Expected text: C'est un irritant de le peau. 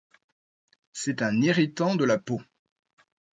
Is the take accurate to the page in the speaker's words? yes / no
no